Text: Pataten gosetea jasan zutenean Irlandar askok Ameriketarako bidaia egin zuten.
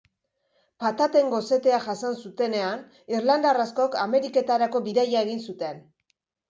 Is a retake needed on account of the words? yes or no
no